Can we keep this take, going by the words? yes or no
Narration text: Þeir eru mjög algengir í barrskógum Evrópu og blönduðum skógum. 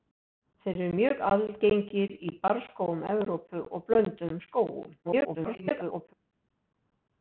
no